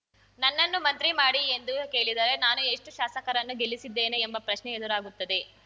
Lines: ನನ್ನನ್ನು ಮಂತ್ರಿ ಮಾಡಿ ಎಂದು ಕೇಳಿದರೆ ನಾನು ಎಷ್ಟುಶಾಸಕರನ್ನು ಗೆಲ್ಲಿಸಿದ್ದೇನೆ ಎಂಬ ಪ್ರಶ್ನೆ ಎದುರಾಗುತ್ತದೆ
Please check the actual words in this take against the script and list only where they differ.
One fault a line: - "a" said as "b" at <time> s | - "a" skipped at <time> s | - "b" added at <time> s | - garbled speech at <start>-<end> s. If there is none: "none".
none